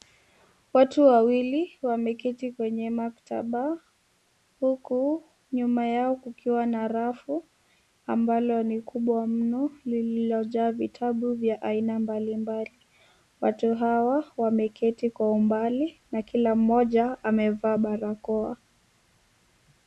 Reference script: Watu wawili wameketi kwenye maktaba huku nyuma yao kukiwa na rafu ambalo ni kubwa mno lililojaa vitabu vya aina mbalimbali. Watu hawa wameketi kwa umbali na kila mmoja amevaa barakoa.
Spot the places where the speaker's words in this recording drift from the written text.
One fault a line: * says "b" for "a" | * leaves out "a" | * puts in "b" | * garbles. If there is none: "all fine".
all fine